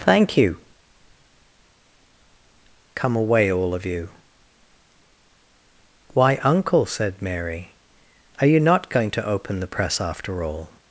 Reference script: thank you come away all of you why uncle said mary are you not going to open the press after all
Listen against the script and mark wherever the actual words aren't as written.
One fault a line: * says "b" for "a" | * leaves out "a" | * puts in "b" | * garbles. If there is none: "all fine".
all fine